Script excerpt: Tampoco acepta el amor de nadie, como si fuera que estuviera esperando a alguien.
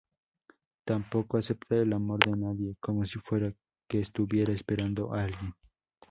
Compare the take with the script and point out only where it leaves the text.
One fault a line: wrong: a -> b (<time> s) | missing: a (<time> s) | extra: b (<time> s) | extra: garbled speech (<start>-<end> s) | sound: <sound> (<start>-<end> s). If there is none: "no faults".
no faults